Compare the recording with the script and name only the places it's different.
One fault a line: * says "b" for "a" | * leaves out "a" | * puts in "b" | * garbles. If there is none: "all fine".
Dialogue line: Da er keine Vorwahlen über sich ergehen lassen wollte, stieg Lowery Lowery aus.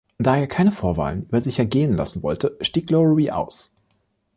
* leaves out "Lowery"